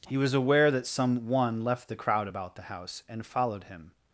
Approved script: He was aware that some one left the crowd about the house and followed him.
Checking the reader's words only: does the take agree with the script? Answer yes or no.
yes